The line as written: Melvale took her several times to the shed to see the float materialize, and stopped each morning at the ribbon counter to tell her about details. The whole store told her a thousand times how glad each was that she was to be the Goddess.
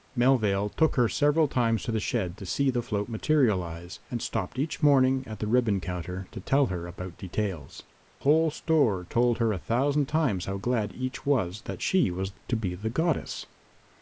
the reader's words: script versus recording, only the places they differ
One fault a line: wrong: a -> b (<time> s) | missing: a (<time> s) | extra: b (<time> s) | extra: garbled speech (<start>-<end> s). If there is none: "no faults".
missing: The (7.8 s)